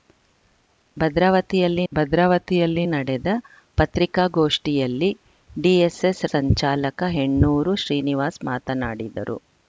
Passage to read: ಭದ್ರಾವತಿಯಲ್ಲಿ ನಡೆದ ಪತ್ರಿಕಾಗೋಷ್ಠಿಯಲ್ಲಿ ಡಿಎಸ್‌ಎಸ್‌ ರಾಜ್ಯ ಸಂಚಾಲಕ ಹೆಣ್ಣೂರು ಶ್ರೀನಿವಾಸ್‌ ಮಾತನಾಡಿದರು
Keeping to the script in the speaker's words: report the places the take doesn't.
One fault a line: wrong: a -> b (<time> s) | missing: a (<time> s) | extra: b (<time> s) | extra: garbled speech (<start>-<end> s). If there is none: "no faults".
extra: ಭದ್ರಾವತಿಯಲ್ಲಿ (1.9 s)
missing: ರಾಜ್ಯ (6.2 s)